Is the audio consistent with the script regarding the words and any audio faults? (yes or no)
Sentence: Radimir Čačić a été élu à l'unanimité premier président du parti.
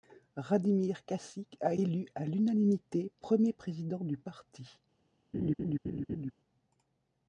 no